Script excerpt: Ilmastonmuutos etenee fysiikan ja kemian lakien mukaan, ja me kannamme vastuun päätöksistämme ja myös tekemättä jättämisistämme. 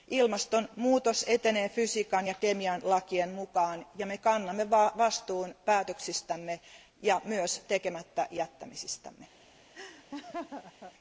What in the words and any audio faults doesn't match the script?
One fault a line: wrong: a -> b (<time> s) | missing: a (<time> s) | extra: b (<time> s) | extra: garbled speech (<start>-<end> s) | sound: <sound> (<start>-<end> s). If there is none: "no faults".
sound: laugh (9.7-10.9 s)